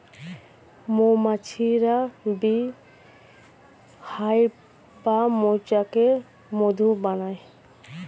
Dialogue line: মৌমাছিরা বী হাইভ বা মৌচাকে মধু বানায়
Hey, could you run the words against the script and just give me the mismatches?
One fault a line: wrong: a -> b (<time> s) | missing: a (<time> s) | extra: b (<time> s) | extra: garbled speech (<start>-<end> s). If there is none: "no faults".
no faults